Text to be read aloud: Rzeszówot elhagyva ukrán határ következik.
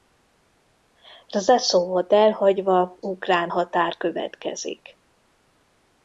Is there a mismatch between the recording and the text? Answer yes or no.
no